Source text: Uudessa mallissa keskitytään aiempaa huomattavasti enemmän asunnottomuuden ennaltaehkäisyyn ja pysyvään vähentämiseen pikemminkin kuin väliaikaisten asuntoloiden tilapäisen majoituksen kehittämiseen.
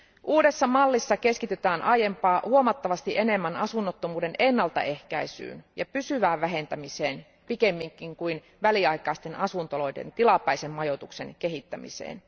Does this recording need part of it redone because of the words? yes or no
no